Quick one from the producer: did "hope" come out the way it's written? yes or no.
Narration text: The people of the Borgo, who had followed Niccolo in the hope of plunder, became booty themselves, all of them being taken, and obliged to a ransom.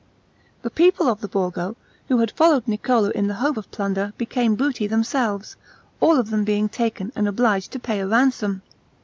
yes